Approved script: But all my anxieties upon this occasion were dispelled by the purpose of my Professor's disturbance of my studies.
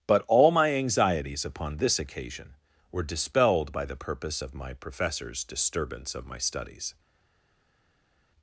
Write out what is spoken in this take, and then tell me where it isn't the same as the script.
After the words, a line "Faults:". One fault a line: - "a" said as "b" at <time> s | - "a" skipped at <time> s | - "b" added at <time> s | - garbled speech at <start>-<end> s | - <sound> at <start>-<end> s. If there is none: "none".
But all my anxieties upon this occasion were dispelled by the purpose of my Professor's disturbance of my studies.
Faults:
none